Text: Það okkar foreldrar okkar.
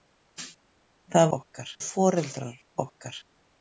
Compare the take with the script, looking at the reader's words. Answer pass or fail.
pass